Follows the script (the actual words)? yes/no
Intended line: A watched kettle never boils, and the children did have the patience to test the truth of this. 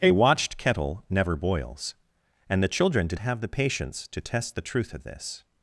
yes